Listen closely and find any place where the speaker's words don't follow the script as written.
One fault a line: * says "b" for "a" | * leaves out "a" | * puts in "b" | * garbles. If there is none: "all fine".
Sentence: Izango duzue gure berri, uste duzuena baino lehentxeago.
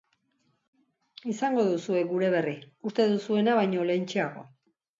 all fine